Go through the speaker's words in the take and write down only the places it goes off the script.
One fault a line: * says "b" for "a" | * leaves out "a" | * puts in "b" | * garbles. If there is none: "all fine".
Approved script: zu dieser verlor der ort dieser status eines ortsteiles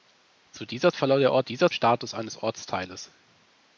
all fine